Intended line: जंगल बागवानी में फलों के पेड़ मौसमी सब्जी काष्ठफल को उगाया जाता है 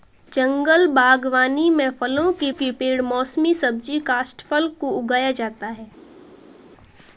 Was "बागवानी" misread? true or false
false